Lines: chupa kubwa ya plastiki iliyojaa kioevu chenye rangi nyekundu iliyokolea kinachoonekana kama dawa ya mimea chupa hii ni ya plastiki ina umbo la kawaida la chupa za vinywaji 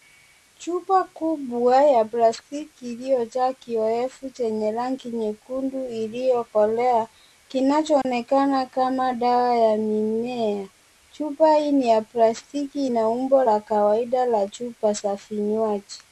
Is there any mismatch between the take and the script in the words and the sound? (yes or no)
yes